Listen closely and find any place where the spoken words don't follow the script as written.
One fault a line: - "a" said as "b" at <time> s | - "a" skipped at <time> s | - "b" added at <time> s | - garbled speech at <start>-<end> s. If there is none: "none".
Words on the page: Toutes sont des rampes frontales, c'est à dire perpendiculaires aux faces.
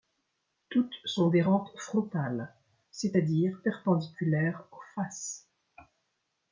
none